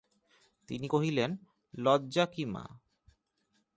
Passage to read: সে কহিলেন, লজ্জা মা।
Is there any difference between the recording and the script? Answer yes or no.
yes